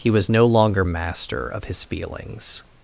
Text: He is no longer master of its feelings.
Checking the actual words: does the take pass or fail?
fail